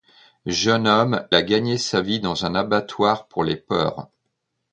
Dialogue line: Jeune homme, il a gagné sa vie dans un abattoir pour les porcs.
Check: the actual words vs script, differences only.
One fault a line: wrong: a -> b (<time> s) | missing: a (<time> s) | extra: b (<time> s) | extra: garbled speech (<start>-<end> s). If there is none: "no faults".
missing: il (1.3 s)